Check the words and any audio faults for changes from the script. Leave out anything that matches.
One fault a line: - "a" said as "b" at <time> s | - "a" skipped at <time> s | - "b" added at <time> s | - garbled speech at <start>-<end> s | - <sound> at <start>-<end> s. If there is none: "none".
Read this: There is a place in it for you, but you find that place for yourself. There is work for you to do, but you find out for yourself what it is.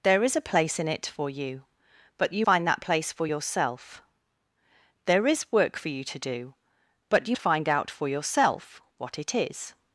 none